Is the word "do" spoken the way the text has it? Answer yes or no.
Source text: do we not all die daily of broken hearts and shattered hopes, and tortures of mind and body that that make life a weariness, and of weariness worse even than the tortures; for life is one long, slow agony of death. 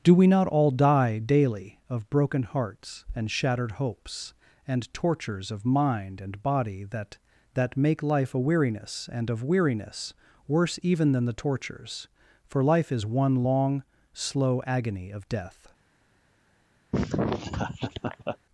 yes